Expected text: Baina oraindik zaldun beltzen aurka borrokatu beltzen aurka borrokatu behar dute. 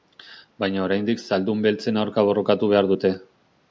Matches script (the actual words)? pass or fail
fail